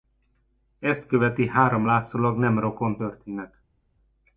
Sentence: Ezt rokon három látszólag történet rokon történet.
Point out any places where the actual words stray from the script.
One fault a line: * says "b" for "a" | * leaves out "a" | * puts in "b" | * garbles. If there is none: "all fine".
* says "követi" for "rokon"
* says "nem" for "történet"